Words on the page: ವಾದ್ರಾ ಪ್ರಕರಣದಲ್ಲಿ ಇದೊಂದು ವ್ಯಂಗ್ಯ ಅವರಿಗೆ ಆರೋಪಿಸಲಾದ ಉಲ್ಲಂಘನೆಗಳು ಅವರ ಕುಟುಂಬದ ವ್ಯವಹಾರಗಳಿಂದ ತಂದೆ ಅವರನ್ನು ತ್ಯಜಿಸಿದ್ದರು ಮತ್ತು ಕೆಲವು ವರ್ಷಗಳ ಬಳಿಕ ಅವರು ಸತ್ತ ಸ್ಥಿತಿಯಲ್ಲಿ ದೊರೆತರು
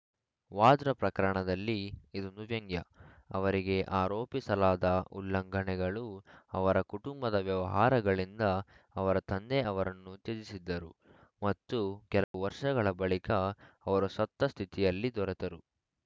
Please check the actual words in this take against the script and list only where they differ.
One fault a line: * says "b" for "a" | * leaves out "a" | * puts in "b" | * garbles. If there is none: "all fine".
* puts in "ಅವರ"